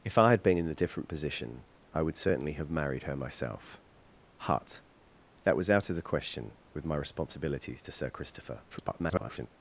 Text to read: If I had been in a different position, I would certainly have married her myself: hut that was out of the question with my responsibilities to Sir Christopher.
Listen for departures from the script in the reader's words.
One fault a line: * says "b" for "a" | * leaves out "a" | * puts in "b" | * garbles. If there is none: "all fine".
* garbles